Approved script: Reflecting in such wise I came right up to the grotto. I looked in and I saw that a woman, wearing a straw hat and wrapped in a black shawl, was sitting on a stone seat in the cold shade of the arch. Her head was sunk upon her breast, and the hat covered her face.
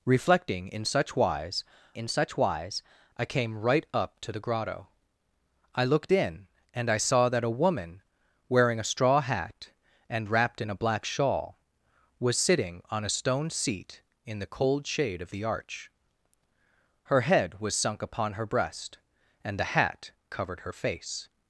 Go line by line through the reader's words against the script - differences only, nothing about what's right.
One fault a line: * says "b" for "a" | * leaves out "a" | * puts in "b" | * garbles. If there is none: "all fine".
* puts in "in such wise"